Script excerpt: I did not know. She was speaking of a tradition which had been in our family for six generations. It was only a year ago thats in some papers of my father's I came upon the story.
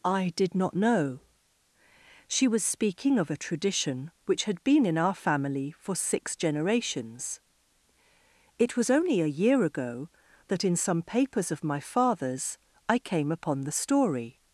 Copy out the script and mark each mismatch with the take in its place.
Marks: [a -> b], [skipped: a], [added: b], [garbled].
I did not know. She was speaking of a tradition which had been in our family for six generations. It was only a year ago [thats -> that] in some papers of my father's I came upon the story.